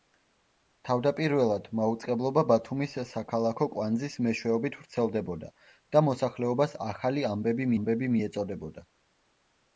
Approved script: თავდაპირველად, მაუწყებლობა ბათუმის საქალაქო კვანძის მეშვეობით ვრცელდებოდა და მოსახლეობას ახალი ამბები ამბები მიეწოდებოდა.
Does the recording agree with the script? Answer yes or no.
yes